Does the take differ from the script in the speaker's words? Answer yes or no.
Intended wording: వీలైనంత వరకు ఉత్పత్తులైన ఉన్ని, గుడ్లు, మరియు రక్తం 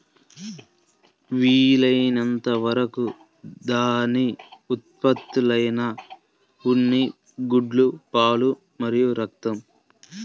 yes